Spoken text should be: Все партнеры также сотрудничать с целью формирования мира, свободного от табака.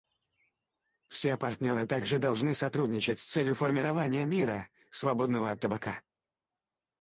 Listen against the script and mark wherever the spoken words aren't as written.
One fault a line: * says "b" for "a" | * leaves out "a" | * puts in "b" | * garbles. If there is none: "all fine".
* puts in "должны"